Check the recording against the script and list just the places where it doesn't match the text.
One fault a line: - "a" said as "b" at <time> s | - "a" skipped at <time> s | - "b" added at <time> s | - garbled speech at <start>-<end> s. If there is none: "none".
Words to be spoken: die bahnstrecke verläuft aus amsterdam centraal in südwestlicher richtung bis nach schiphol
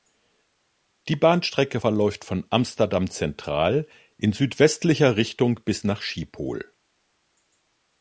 - "aus" said as "von" at 2.2 s